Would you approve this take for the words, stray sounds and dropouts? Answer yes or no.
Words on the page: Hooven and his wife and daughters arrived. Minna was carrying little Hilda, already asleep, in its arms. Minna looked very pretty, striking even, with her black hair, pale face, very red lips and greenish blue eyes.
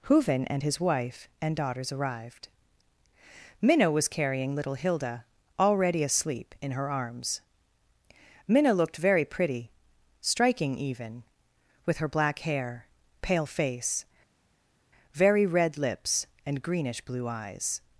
no